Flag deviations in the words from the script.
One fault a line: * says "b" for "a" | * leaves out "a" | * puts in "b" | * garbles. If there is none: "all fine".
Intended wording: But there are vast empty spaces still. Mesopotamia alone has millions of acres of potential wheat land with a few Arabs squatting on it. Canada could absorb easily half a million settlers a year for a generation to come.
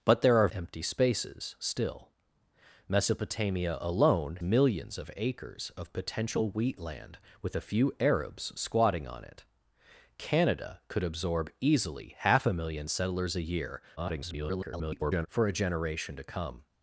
* leaves out "vast"
* leaves out "has"
* garbles